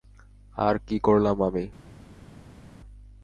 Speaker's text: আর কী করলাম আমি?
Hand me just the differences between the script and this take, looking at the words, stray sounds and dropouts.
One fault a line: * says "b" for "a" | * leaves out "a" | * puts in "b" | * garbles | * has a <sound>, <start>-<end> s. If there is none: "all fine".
all fine